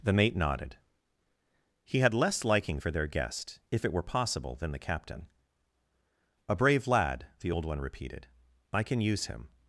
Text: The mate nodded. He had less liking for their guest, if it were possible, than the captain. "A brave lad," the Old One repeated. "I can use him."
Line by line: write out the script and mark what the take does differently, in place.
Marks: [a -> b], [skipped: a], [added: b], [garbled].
The mate nodded. He had less liking for their guest, if it were possible, than the captain. "A brave lad," the Old One repeated. "I can use him."